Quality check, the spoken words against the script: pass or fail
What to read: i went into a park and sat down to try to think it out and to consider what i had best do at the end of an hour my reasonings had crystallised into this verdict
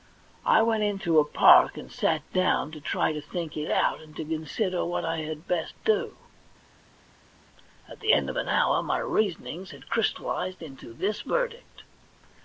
pass